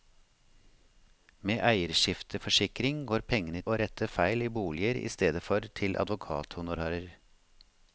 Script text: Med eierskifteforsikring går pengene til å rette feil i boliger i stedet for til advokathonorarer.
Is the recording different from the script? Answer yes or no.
yes